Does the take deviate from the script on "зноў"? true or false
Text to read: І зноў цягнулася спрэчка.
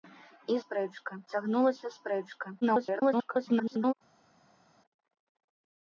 true